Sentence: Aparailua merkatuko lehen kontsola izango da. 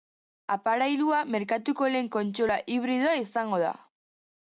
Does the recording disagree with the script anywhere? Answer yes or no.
yes